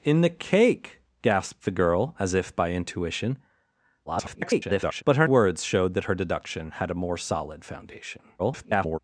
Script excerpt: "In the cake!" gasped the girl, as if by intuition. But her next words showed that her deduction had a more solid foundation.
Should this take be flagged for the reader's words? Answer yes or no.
yes